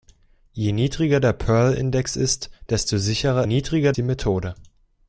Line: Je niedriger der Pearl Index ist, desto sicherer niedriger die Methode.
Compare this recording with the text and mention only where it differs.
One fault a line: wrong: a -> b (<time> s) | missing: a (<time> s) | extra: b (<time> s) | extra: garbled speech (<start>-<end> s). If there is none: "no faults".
no faults